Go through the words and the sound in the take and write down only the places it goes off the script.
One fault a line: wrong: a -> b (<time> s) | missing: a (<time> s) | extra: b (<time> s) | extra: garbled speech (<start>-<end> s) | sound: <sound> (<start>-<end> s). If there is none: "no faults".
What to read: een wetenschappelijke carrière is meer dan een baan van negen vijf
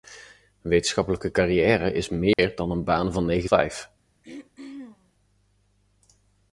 sound: dropout (2.3-2.4 s)
sound: throat clearing (4.2-5.1 s)